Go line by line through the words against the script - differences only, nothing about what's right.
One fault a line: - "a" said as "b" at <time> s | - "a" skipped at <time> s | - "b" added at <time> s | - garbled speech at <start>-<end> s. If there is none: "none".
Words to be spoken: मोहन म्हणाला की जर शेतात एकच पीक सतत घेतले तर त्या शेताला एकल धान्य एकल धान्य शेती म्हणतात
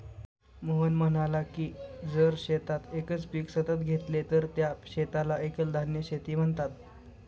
- "एकल धान्य" skipped at 6.0 s